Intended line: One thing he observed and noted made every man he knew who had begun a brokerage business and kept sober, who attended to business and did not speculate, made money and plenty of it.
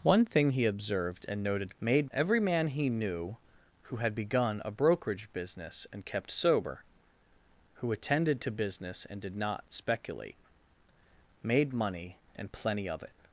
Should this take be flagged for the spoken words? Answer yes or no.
no